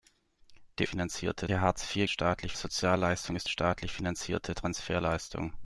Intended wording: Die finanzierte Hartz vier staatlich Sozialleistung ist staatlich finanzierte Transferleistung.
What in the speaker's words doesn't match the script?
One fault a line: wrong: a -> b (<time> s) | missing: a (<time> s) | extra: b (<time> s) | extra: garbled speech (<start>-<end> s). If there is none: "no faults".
no faults